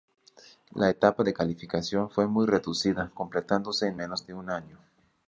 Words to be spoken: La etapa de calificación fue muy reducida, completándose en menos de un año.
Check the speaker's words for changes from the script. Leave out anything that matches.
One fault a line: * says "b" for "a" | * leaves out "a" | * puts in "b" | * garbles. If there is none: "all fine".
all fine